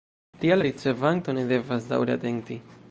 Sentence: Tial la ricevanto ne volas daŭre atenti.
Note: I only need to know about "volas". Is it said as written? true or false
false